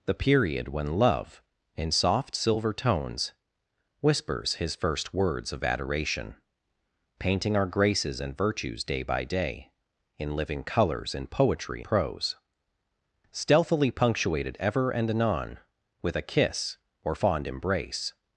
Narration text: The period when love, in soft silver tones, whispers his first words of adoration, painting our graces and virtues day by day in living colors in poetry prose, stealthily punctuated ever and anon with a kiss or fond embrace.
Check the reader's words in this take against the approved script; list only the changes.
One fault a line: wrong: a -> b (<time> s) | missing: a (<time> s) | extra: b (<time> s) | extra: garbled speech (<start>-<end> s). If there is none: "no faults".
no faults